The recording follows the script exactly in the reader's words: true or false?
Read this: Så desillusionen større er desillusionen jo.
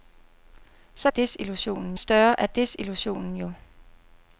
true